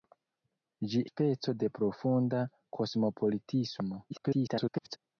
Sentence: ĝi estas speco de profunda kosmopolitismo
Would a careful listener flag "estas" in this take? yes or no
yes